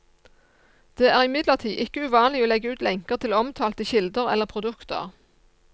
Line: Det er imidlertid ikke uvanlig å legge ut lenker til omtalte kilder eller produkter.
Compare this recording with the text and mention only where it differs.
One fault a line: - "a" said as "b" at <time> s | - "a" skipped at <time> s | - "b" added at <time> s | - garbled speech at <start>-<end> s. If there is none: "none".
none